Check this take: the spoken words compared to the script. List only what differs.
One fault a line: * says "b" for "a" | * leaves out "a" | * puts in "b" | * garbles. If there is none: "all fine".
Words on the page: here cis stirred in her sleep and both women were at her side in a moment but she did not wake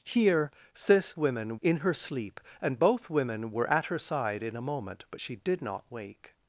* says "women" for "stirred"